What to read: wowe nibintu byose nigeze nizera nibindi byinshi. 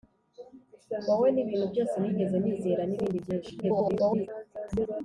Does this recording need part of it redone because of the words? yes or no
yes